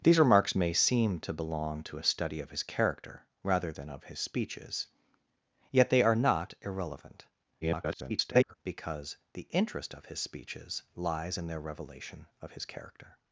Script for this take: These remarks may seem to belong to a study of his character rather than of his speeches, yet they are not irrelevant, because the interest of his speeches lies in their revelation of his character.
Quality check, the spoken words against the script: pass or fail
fail